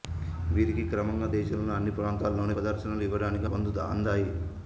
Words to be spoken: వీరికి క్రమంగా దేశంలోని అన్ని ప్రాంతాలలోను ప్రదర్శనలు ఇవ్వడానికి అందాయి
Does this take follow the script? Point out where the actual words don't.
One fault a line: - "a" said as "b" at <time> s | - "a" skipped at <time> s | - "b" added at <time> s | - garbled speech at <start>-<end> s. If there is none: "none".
none